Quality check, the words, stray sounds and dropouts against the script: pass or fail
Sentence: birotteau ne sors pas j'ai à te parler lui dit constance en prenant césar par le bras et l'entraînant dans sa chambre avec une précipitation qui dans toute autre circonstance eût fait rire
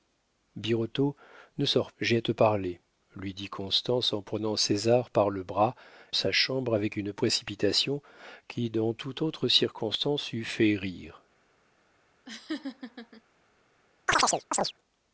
fail